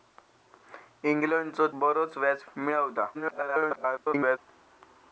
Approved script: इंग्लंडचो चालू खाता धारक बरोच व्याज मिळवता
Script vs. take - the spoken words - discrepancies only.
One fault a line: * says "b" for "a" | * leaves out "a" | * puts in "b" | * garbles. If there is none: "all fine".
* leaves out "चालू खाता धारक"
* garbles